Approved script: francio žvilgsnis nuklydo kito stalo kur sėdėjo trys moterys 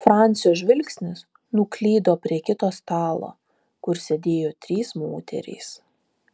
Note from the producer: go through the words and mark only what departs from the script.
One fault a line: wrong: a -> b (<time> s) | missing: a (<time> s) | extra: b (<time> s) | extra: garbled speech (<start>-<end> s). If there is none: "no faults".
extra: prie (2.2 s)